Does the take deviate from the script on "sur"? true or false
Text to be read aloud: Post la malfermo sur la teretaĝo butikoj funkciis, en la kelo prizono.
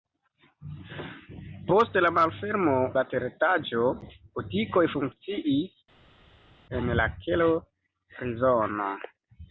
true